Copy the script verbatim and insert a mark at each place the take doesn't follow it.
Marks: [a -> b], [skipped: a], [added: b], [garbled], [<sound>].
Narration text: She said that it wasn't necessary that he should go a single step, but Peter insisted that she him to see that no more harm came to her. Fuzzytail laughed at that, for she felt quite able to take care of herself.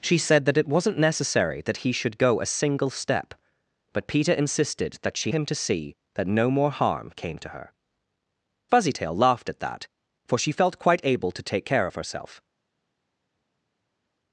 She said that it wasn't necessary that he should go a single step, but Peter insisted that she him to see that no more harm came to her. Fuzzytail laughed at that, for she felt quite able to take care of herself.